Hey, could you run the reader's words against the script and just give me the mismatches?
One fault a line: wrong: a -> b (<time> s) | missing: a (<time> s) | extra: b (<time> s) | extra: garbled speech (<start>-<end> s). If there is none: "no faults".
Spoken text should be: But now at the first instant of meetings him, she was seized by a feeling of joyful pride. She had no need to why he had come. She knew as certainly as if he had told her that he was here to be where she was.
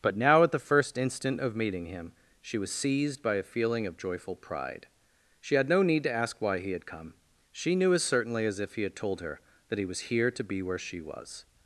wrong: meetings -> meeting (1.6 s)
extra: ask (6.1 s)